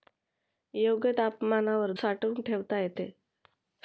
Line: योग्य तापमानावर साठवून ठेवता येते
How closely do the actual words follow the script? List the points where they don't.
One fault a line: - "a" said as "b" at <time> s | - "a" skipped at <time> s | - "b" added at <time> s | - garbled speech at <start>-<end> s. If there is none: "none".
none